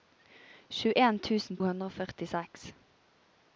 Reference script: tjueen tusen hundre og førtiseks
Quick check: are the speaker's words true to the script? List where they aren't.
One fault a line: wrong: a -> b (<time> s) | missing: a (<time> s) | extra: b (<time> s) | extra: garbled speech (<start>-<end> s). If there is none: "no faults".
no faults